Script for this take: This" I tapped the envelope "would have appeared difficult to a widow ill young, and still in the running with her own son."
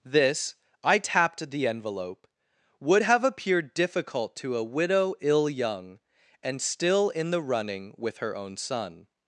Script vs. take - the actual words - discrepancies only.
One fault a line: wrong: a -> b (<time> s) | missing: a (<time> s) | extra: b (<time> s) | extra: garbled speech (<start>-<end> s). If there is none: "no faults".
no faults